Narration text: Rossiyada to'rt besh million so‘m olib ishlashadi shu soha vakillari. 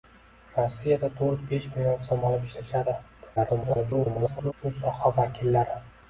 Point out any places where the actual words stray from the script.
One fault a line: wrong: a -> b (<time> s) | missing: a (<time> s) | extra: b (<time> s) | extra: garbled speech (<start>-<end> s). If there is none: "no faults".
extra: garbled speech (3.4-4.5 s)